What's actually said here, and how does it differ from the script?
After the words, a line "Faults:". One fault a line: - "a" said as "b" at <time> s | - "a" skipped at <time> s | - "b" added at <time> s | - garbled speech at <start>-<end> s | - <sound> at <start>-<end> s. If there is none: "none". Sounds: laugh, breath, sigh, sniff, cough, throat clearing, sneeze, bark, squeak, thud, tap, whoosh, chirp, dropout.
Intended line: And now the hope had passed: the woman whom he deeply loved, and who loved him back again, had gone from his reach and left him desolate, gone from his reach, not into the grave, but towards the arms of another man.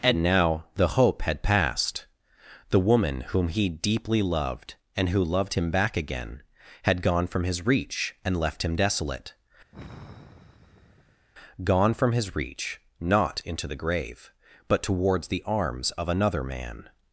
And now the hope had passed: the woman whom he deeply loved, and who loved him back again, had gone from his reach and left him desolate, gone from his reach, not into the grave, but towards the arms of another man.
Faults:
- sigh at 9.7-11.3 s